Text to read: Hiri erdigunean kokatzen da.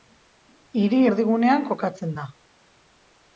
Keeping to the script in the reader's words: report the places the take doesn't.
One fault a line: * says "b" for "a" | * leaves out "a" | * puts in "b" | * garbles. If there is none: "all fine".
all fine